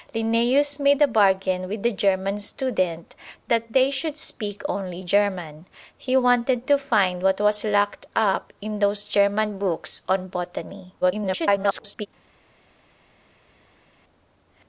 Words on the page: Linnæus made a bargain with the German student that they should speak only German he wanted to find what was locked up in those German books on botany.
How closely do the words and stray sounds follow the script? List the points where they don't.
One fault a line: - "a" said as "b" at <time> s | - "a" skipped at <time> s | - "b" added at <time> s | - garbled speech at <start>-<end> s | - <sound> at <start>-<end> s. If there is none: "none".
- garbled speech at 11.0-12.1 s